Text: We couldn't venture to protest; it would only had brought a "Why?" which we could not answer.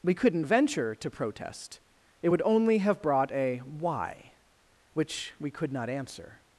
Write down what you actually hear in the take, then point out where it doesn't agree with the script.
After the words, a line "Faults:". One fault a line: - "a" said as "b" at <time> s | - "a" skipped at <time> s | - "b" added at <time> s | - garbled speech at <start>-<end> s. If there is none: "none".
We couldn't venture to protest; it would only have brought a "Why?" which we could not answer.
Faults:
- "had" said as "have" at 2.8 s